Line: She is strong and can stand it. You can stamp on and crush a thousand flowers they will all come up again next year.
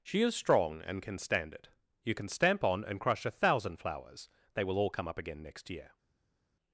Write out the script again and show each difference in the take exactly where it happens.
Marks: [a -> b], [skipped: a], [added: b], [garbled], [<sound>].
She is strong and can stand it. You can stamp on and crush a thousand flowers they will all come up again next year.